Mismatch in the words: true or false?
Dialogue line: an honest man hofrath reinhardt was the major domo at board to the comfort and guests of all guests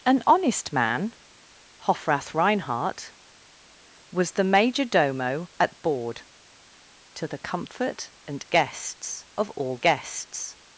false